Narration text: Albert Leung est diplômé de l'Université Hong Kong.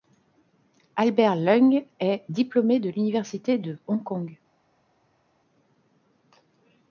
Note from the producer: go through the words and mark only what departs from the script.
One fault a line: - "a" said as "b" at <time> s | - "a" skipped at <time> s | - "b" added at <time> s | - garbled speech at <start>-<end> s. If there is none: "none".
- "de" added at 3.6 s